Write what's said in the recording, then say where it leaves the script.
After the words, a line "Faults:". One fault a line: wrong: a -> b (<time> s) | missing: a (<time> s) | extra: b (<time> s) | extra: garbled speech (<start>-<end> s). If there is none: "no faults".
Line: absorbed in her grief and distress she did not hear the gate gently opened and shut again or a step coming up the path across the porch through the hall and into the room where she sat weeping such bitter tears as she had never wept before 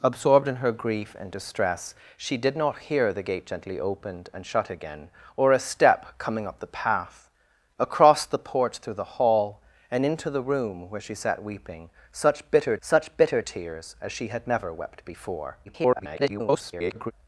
absorbed in her grief and distress she did not hear the gate gently opened and shut again or a step coming up the path across the porch through the hall and into the room where she sat weeping such bitter such bitter tears as she had never wept before [garbled]
Faults:
extra: such bitter (12.8 s)
extra: garbled speech (15.6-17.1 s)